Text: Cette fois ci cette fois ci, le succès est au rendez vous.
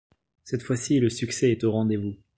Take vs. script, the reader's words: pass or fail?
fail